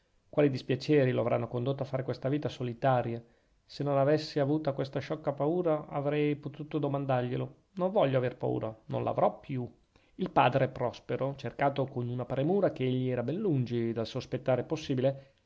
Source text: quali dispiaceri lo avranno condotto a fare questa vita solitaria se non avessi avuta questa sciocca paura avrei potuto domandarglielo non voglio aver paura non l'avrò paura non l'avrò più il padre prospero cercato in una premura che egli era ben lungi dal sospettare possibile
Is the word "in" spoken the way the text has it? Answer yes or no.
no